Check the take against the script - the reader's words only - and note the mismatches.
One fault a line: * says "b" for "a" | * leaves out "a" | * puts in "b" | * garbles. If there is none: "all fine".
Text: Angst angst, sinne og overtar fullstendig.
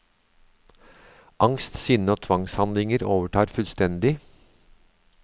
* leaves out "angst"
* puts in "tvangshandlinger"